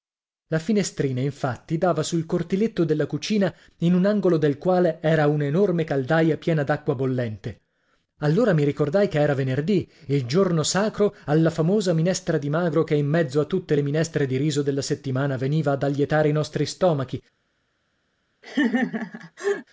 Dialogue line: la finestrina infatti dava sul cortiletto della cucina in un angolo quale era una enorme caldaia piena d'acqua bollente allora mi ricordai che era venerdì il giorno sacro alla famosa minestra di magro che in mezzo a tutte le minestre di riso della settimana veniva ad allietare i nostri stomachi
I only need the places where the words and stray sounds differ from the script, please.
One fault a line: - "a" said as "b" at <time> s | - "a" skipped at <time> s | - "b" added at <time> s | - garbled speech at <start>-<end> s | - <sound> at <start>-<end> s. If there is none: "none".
- "del" added at 4.4 s
- laugh at 18.4-19.7 s